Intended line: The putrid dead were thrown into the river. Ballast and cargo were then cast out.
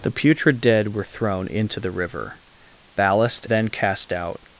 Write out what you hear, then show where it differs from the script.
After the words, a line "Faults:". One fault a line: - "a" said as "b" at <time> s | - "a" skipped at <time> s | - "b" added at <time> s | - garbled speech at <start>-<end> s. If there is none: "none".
The putrid dead were thrown into the river. Ballast then cast out.
Faults:
- "and cargo were" skipped at 3.5 s